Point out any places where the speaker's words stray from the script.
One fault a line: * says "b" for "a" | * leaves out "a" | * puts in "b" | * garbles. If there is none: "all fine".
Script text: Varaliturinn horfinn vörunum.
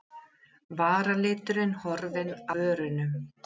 all fine